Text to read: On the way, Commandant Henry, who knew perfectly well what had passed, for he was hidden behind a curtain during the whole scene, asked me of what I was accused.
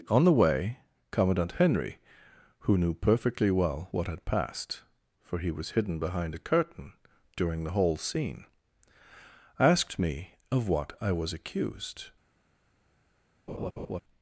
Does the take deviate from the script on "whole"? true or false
false